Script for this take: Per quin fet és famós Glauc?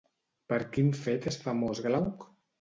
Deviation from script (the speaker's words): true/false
false